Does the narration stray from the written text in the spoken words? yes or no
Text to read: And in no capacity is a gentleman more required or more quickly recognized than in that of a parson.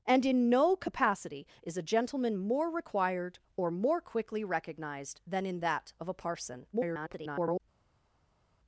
yes